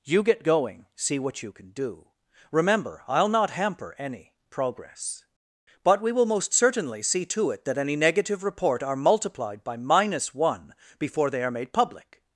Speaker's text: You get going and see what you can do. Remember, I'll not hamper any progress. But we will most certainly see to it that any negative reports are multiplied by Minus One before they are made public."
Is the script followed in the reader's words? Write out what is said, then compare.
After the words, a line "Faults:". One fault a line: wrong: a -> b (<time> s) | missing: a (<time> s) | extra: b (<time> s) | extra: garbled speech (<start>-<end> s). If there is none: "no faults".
You get going see what you can do. Remember, I'll not hamper any progress. But we will most certainly see to it that any negative report are multiplied by Minus One before they are made public."
Faults:
missing: and (0.9 s)
wrong: reports -> report (8.4 s)